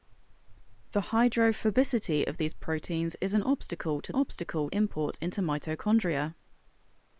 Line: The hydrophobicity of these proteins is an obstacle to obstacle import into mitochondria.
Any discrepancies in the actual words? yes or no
no